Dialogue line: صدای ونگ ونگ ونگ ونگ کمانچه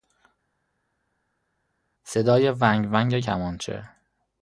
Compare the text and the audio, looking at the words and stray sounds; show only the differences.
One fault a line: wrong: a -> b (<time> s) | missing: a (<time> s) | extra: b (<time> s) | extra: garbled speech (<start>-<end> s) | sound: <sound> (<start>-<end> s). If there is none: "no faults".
missing: ونگ ونگ (3.2 s)